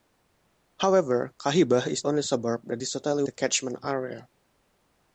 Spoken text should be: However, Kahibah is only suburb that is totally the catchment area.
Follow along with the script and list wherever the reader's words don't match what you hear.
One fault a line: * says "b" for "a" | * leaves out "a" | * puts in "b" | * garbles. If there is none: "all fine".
all fine